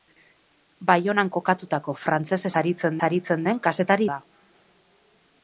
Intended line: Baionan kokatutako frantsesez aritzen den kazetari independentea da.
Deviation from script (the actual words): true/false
true